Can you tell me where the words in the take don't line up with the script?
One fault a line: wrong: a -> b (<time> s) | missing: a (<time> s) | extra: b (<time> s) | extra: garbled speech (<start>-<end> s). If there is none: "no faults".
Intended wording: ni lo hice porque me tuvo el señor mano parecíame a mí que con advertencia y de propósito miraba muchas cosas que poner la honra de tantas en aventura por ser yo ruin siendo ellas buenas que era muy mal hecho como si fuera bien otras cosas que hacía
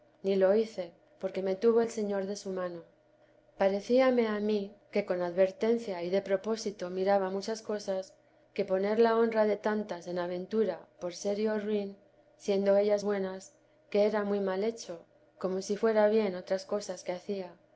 extra: de su (2.3 s)